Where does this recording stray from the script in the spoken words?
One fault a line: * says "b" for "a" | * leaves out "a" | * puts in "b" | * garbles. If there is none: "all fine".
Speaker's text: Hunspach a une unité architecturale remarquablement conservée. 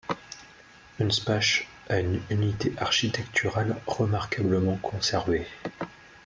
all fine